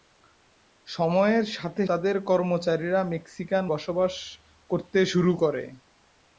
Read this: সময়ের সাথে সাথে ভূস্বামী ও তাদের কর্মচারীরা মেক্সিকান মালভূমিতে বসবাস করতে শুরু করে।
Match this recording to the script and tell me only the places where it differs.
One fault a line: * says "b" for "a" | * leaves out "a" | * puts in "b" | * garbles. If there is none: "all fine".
* leaves out "সাথে ভূস্বামী ও"
* leaves out "মালভূমিতে"